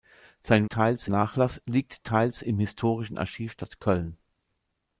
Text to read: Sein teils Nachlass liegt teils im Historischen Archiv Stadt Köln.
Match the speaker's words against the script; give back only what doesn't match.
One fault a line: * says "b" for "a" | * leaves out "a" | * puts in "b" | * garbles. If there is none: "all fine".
all fine